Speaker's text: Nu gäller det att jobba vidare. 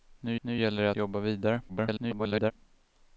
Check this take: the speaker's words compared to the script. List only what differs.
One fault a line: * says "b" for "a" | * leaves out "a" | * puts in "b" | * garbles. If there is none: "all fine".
* puts in "nu"
* leaves out "att"
* garbles